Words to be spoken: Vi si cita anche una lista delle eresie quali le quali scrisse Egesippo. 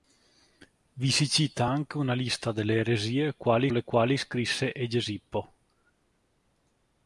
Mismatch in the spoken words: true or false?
false